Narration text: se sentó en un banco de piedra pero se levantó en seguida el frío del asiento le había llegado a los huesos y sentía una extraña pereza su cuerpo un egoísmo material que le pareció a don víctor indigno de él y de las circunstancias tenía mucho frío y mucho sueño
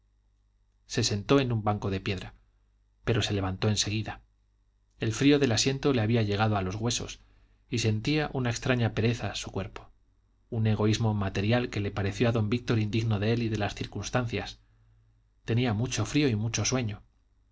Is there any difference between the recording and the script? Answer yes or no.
no